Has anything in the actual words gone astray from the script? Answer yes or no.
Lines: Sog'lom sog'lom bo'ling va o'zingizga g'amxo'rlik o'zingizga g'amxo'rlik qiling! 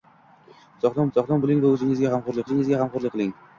no